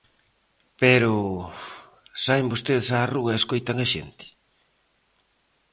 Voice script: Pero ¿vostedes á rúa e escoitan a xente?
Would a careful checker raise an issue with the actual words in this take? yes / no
yes